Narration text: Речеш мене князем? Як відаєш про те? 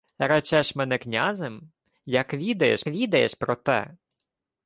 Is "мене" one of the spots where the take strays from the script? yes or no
no